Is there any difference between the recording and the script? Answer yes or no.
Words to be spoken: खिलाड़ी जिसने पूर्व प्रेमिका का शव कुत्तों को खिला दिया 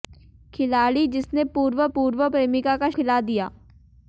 yes